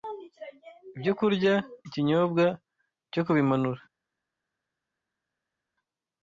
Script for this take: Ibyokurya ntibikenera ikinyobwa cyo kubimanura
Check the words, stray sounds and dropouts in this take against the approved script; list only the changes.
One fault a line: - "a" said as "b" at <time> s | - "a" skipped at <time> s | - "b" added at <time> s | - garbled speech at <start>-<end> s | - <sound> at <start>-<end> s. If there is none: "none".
- "ntibikenera" skipped at 1.5 s